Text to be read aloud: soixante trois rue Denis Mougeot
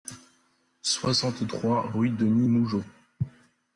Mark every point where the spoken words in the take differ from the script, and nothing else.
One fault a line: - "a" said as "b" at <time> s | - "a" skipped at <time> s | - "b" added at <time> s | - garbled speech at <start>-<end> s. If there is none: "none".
none